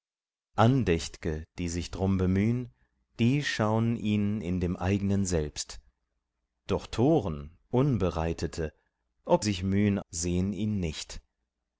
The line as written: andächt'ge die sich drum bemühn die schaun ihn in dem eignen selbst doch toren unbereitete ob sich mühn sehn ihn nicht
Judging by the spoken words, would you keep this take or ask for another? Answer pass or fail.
pass